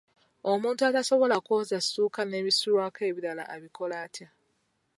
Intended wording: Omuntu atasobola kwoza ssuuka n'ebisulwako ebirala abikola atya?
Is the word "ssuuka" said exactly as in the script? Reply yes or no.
yes